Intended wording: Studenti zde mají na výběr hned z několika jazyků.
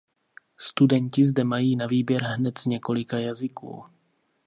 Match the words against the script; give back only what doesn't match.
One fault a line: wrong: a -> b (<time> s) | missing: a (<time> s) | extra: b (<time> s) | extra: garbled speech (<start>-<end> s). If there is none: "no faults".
no faults